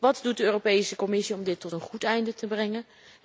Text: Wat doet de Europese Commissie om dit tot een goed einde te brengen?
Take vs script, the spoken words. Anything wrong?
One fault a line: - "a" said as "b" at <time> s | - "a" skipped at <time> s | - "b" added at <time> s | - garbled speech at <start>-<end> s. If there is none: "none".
none